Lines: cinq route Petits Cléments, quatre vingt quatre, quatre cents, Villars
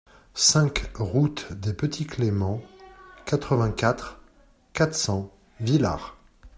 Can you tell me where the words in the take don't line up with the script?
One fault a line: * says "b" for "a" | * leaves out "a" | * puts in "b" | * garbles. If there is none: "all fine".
* puts in "des"